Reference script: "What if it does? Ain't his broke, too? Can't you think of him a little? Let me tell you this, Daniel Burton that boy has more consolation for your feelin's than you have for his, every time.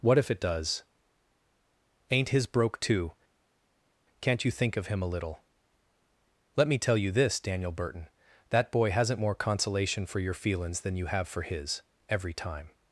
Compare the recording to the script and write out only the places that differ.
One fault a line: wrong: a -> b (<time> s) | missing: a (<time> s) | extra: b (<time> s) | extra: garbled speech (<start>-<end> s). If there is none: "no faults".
wrong: has -> hasn't (8.9 s)